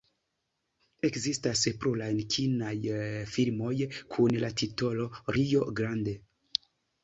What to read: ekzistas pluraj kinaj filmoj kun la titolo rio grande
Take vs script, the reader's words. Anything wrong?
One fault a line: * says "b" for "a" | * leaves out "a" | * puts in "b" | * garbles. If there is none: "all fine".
all fine